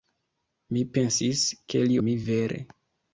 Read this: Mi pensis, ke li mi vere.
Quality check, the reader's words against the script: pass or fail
pass